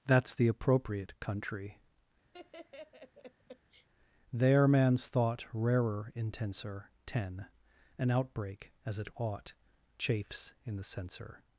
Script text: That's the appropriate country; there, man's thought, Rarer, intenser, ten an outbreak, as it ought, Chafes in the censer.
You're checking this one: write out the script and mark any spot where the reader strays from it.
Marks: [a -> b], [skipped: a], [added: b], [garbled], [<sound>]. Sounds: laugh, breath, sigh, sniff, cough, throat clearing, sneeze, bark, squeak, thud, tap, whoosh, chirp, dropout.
That's the appropriate country; [laugh] there, man's thought, Rarer, intenser, ten an outbreak, as it ought, Chafes in the censer.